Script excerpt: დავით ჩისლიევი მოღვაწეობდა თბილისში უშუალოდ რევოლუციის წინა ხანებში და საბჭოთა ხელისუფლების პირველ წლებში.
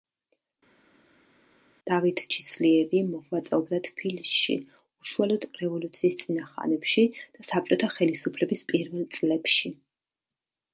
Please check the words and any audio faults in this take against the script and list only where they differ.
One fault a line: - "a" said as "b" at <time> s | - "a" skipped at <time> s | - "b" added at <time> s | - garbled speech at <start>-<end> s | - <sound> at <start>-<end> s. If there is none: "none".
none